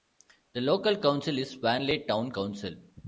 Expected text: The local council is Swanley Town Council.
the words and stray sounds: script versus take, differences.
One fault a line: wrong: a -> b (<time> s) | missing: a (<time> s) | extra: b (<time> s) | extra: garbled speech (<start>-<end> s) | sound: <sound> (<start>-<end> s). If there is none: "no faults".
no faults